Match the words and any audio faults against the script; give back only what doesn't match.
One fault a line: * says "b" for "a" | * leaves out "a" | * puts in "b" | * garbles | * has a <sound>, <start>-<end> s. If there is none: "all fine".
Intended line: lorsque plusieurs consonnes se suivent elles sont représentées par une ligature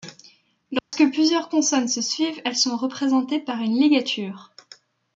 * has a dropout, 0.8-0.9 s